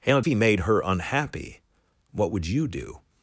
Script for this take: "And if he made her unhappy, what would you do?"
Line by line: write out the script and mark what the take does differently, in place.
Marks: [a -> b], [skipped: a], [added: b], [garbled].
"And [skipped: if] he made her unhappy, what would you do?"